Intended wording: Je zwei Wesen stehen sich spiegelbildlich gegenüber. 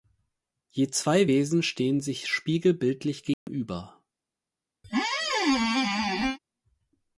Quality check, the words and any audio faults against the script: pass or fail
fail